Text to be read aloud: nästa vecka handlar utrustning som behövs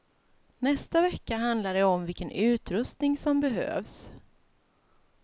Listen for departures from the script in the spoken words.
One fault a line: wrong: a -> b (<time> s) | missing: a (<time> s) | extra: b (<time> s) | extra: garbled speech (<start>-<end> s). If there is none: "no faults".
extra: det om vilken (1.7 s)